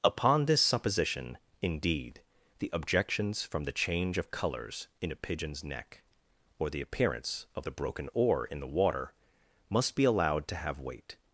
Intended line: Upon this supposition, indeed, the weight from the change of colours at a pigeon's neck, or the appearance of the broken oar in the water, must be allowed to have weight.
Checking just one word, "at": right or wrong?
wrong